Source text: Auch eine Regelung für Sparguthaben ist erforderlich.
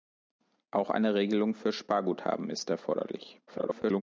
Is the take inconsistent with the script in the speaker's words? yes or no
yes